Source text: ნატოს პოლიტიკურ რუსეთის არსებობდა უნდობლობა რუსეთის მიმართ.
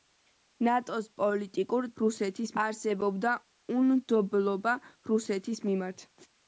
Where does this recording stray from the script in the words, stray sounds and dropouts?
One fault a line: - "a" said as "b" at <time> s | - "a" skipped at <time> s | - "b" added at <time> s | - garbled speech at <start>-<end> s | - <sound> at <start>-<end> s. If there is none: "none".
none